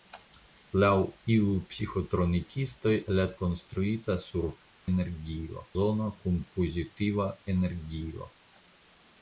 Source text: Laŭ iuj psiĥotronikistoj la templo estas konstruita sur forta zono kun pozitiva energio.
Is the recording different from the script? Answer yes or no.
yes